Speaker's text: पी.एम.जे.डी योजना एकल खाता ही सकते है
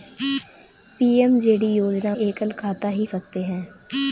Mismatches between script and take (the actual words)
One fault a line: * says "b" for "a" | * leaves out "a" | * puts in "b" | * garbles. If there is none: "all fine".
all fine